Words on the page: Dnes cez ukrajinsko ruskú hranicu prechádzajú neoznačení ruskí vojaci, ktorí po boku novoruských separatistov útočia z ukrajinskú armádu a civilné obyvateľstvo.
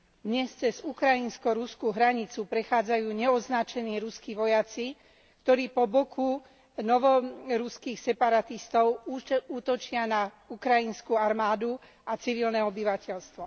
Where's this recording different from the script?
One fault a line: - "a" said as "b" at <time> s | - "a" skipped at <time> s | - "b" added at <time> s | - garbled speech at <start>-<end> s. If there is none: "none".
- "z" said as "na" at 10.1 s